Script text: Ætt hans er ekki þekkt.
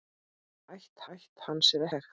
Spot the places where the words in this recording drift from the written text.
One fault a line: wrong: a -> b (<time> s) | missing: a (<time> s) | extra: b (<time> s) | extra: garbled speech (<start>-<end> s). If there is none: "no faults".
extra: ætt (1.2 s)
missing: ekki (1.9 s)